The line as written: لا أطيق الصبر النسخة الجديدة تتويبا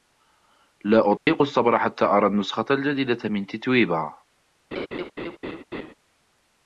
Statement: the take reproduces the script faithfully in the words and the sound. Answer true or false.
false